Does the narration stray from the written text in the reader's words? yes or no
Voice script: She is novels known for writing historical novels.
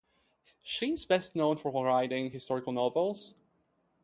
yes